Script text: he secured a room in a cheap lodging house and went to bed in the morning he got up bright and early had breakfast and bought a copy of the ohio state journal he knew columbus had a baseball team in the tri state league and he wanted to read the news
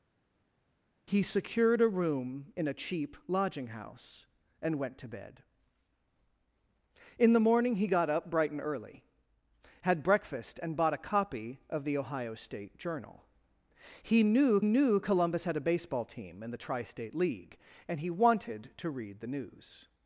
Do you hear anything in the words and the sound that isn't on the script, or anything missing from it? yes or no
yes